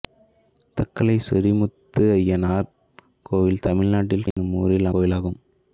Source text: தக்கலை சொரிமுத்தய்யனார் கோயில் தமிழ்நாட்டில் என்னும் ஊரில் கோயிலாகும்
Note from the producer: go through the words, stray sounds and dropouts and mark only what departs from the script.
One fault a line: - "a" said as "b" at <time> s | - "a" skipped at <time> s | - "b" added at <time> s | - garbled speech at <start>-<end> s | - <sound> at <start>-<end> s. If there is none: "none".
- dropout at 4.3-4.4 s